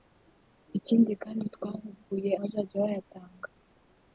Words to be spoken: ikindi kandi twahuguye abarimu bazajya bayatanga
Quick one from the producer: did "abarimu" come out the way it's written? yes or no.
no